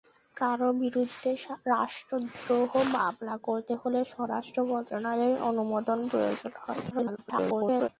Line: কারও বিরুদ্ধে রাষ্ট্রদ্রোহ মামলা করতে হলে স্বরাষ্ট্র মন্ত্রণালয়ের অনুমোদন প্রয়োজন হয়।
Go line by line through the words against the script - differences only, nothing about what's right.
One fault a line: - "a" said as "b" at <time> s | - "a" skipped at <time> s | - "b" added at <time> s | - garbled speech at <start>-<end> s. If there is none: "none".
- garbled speech at 6.9-7.9 s